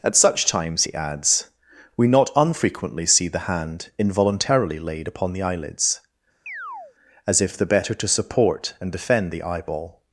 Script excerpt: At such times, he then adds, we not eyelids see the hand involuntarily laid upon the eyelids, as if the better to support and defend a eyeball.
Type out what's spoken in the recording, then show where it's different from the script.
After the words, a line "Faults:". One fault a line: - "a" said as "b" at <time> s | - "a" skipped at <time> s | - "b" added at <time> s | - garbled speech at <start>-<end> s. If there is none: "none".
At such times, he adds, we not unfrequently see the hand involuntarily laid upon the eyelids, as if the better to support and defend the eyeball.
Faults:
- "then" skipped at 0.9 s
- "eyelids" said as "unfrequently" at 2.4 s
- "a" said as "the" at 9.3 s